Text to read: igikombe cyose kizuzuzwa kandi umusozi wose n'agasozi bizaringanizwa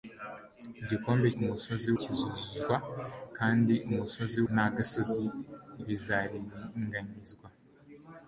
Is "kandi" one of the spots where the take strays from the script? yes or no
no